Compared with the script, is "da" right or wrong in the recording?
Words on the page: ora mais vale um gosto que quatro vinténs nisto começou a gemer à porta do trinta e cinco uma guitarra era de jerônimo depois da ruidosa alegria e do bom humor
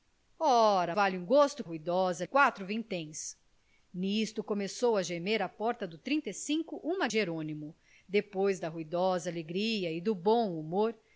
right